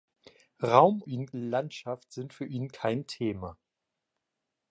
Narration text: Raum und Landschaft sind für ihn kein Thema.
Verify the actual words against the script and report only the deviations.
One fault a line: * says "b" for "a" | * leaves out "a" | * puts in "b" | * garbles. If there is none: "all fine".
* says "ihn" for "und"